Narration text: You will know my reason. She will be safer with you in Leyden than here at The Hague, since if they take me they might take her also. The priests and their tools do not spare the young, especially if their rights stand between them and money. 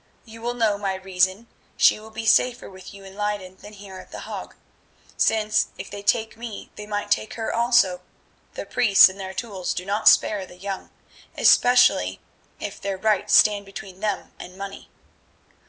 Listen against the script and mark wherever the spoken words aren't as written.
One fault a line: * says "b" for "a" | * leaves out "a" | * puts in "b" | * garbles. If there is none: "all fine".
all fine